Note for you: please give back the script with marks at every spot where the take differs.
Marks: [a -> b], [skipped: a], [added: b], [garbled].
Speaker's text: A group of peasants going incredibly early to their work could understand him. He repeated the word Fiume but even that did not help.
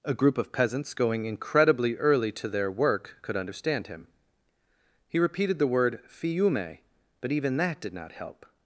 A group of peasants going incredibly early to their work could understand him. He repeated the word Fiume but even that did not help.